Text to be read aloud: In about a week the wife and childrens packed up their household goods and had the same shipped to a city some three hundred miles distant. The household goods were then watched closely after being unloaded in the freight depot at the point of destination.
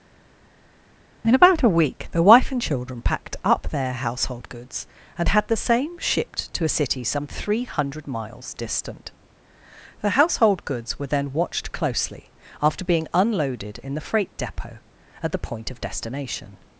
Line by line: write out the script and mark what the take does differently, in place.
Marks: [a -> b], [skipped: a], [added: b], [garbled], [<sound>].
In about a week the wife and [childrens -> children] packed up their household goods and had the same shipped to a city some three hundred miles distant. The household goods were then watched closely after being unloaded in the freight depot at the point of destination.